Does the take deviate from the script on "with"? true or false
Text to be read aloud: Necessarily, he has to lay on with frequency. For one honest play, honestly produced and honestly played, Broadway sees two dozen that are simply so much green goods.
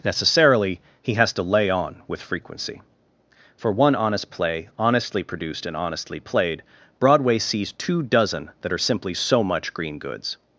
false